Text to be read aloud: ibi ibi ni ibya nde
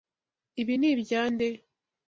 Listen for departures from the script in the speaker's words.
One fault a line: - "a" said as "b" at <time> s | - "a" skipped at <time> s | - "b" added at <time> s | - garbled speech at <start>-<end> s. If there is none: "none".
- "ibi" skipped at 0.8 s